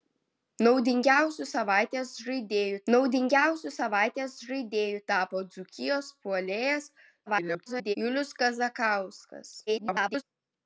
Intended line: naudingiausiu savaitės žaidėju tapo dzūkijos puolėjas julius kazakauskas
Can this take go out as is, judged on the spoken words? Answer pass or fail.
fail